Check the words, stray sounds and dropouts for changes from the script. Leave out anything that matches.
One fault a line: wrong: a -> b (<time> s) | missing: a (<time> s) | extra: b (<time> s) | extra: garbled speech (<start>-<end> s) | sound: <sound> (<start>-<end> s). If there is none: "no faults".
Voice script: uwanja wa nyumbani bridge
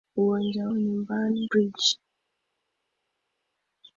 no faults